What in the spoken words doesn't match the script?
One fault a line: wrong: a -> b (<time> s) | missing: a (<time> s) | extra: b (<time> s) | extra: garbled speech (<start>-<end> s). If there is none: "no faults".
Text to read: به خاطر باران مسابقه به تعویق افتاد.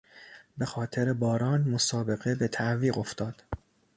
no faults